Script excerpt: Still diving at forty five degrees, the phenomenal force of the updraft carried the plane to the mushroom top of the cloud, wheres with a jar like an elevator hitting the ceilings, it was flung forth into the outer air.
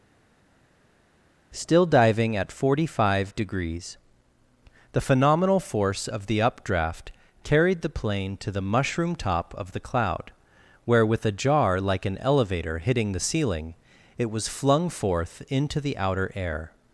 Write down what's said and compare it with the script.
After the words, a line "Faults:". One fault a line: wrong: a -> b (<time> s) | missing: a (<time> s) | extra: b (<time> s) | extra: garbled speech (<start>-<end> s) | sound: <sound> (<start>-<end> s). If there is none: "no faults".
Still diving at forty five degrees, the phenomenal force of the updraft carried the plane to the mushroom top of the cloud, where with a jar like an elevator hitting the ceiling, it was flung forth into the outer air.
Faults:
wrong: wheres -> where (10.9 s)
wrong: ceilings -> ceiling (13.3 s)